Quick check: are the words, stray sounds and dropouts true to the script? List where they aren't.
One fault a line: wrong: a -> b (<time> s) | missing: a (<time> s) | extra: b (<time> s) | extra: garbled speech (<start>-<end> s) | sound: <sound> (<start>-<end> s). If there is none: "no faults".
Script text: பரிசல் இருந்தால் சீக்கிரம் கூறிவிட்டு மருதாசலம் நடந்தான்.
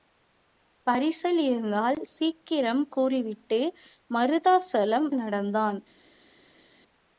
no faults